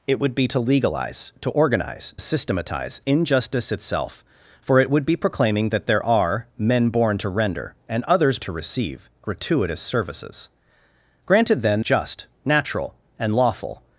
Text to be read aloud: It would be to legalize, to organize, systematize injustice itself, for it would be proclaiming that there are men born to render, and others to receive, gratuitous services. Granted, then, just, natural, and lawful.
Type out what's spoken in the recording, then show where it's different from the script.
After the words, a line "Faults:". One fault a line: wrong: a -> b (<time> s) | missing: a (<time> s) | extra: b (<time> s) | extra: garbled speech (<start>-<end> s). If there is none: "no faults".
It would be to legalize, to organize, systematize injustice itself, for it would be proclaiming that there are men born to render, and others to receive, gratuitous services. Granted, then, just, natural, and lawful.
Faults:
no faults